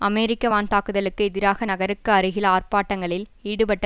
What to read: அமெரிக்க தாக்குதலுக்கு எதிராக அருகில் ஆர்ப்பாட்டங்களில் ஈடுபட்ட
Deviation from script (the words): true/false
true